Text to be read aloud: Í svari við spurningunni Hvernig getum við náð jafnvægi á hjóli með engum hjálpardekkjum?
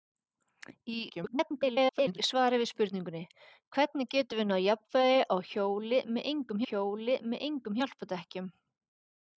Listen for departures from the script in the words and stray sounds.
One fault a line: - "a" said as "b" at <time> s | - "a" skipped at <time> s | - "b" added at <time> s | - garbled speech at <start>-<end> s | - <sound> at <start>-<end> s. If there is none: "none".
- garbled speech at 1.1-2.2 s
- "hjóli með engum" added at 6.7 s